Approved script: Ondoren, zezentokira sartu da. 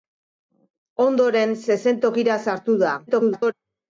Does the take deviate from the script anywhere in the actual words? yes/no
yes